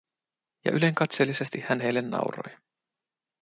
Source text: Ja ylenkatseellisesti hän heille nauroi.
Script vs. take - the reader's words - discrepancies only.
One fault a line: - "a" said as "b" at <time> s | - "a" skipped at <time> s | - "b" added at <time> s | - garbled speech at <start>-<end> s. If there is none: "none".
none